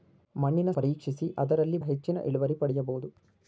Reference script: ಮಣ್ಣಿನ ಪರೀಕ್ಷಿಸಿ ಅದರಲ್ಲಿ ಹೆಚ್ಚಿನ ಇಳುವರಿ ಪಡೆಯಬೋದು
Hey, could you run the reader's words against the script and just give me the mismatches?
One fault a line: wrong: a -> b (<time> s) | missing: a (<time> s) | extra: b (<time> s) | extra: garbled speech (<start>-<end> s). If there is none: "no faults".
no faults